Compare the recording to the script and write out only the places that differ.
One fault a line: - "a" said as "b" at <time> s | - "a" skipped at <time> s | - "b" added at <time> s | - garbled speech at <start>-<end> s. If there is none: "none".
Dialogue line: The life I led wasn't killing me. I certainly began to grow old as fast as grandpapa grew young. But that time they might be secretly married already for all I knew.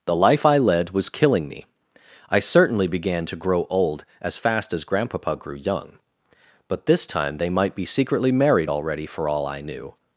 - "wasn't" said as "was" at 0.9 s
- "that" said as "this" at 6.8 s